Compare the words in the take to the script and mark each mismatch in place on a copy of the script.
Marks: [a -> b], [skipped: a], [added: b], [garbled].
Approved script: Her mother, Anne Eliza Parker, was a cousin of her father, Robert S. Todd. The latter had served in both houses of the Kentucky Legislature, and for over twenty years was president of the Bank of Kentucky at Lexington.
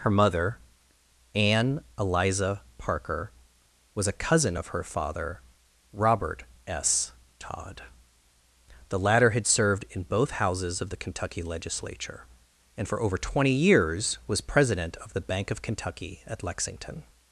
Her mother, Anne Eliza Parker, was a cousin of her father, Robert S. Todd. The latter had served in both houses of the Kentucky Legislature, and for over twenty years was president of the Bank of Kentucky at Lexington.